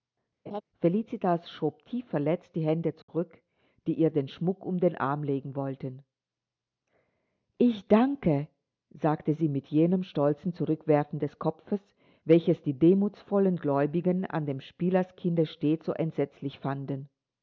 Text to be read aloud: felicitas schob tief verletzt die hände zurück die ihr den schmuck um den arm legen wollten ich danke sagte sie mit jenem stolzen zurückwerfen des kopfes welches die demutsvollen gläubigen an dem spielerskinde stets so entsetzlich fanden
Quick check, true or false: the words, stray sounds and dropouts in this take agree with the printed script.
false